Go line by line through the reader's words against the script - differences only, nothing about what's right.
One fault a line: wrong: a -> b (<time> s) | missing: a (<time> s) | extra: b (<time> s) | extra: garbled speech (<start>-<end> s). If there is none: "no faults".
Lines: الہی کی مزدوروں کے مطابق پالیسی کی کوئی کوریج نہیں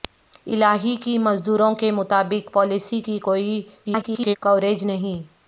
extra: garbled speech (3.8-4.4 s)